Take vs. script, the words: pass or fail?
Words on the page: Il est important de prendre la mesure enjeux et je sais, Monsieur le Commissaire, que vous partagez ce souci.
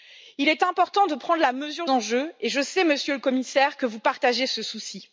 pass